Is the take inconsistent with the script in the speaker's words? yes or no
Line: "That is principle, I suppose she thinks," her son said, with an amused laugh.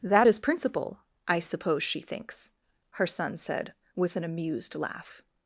no